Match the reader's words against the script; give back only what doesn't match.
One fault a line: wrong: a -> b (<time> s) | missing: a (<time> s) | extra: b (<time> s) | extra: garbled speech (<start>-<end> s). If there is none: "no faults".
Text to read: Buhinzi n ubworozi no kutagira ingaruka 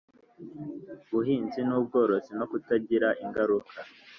no faults